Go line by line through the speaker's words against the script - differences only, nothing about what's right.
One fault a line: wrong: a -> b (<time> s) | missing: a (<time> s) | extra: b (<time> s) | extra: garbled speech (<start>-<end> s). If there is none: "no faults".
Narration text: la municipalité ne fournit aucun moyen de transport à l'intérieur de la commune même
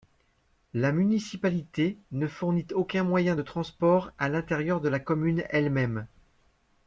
extra: elle (5.5 s)